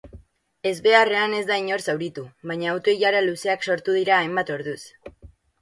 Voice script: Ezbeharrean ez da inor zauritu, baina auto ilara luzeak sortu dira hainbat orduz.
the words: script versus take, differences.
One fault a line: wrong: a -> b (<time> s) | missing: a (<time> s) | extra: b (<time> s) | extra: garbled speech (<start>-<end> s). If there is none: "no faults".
no faults